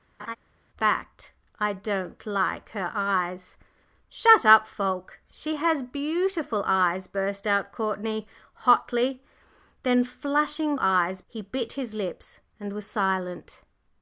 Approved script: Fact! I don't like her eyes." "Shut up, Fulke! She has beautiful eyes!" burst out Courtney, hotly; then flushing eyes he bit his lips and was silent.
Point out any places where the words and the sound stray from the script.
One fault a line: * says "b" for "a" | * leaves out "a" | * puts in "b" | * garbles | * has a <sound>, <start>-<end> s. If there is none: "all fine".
* has a laugh, 0.2-0.4 s